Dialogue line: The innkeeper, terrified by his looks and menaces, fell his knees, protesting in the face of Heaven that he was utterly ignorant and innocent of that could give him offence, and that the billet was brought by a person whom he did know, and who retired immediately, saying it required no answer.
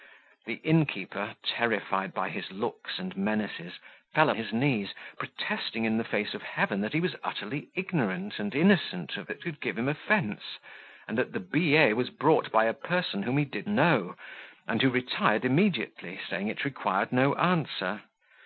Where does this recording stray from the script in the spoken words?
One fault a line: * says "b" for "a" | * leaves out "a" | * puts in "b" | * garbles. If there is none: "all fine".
all fine